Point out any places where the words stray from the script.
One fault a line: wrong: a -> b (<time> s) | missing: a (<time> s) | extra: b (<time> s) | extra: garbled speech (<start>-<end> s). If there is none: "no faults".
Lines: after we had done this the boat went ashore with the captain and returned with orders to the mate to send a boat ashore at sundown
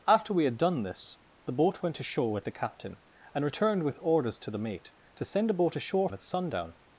no faults